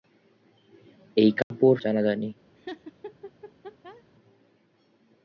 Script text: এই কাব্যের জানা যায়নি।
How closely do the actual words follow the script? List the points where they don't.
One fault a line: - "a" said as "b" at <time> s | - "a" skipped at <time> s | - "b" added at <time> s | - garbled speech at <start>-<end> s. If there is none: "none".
none